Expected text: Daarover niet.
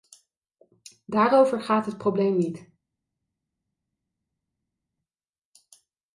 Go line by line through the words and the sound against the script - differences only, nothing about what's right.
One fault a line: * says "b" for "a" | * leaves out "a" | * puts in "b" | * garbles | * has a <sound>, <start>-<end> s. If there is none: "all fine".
* puts in "gaat het probleem"